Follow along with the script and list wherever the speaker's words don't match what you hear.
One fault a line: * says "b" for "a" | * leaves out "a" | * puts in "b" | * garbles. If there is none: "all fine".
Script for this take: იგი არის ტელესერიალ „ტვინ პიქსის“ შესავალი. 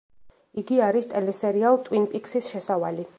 all fine